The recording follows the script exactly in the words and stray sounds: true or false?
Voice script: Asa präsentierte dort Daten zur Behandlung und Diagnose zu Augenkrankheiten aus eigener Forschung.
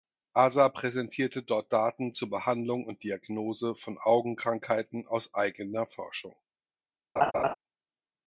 false